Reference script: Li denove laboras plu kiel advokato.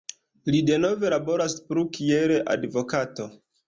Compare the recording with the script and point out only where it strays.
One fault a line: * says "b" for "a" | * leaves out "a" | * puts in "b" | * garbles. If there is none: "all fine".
all fine